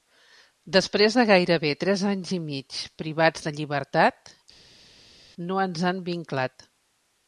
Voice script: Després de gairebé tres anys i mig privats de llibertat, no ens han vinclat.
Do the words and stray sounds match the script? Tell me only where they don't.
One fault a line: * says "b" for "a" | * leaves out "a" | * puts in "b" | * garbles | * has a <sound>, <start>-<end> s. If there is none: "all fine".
all fine